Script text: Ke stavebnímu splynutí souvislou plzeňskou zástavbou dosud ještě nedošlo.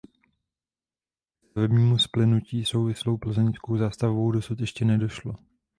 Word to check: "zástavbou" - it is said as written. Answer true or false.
true